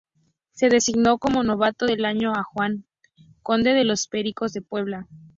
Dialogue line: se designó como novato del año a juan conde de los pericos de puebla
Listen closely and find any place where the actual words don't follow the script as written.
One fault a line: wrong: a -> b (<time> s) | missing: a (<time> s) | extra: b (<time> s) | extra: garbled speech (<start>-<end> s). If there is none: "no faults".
no faults